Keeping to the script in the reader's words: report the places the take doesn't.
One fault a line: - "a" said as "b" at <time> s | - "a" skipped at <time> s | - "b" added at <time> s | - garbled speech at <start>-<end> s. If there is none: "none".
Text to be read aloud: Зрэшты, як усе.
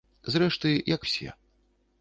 none